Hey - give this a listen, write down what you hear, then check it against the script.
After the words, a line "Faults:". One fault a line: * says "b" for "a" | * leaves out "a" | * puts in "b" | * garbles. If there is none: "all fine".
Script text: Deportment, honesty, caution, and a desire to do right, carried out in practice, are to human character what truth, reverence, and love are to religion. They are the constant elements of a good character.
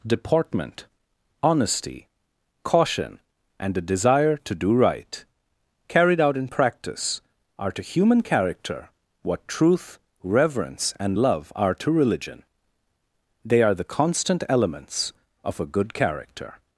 Deportment, honesty, caution, and a desire to do right, carried out in practice, are to human character what truth, reverence, and love are to religion. They are the constant elements of a good character.
Faults:
all fine